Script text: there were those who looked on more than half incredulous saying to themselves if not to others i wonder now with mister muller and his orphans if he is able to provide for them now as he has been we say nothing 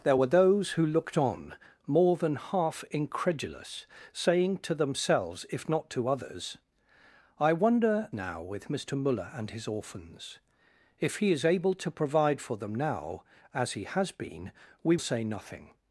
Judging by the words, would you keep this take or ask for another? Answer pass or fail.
pass